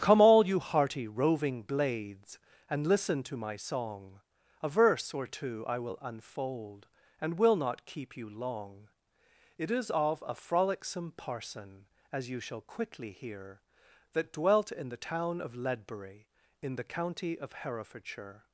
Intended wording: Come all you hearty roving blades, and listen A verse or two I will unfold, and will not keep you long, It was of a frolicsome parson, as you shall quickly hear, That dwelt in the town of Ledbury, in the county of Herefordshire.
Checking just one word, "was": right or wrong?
wrong